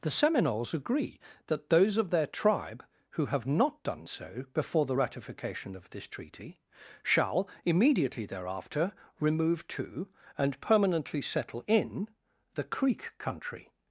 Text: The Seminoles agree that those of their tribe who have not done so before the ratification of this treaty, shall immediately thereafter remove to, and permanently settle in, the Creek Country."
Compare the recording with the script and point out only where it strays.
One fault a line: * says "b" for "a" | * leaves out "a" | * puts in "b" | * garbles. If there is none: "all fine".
all fine